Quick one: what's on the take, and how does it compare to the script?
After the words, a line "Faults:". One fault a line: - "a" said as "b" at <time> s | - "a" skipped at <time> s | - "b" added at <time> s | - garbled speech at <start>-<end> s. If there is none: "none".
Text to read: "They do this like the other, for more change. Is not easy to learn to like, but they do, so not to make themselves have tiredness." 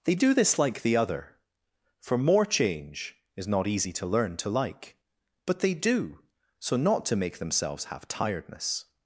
"They do this like the other, for more change. Is not easy to learn to like, but they do, so not to make themselves have tiredness."
Faults:
none